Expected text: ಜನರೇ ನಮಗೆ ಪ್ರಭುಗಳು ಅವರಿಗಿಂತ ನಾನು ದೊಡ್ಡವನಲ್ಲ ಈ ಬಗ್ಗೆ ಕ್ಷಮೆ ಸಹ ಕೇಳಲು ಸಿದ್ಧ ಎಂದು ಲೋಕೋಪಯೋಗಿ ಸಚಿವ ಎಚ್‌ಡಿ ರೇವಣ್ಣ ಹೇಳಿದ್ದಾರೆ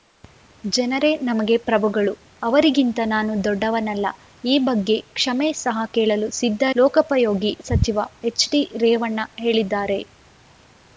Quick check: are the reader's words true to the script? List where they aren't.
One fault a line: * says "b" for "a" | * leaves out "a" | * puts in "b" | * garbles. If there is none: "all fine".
* leaves out "ಎಂದು"